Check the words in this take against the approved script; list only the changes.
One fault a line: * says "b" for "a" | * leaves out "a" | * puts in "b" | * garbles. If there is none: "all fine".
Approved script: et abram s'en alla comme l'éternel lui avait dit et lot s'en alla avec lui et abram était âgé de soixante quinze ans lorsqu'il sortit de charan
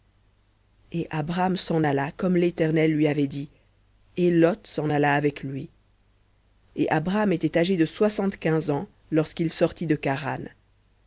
all fine